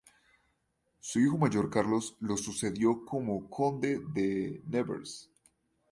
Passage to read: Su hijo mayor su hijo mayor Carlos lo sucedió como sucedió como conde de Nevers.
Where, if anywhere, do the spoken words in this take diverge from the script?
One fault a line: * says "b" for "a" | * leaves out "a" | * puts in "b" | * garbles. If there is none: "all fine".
* leaves out "su hijo mayor"
* leaves out "sucedió como"